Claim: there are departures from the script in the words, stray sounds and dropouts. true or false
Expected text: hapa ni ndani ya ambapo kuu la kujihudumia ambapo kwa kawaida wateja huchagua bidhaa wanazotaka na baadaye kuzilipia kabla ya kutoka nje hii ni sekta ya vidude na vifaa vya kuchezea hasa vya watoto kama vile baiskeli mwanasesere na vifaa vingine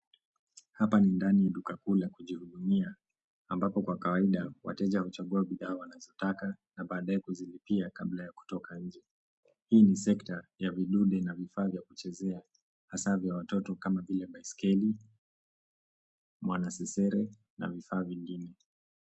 true